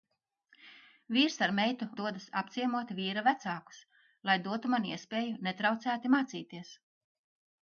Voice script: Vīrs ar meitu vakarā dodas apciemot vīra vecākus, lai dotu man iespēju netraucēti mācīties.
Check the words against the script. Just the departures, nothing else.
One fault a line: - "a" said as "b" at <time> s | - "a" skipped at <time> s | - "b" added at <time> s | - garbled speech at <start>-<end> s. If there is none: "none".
- "vakarā" skipped at 1.9 s